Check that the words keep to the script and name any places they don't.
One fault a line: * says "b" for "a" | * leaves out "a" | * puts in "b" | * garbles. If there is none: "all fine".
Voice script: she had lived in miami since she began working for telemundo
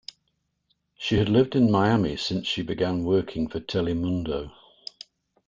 all fine